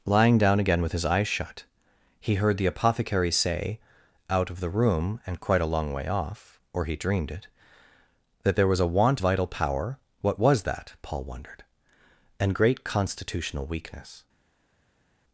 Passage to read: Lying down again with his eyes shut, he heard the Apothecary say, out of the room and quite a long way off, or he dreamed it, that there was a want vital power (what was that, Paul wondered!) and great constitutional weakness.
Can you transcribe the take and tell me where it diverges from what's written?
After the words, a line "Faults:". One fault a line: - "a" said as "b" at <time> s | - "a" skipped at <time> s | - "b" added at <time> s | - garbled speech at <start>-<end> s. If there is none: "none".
Lying down again with his eyes shut, he heard the Apothecary say, out of the room and quite a long way off, or he dreamed it, that there was a want vital power (what was that, Paul wondered!) and great constitutional weakness.
Faults:
none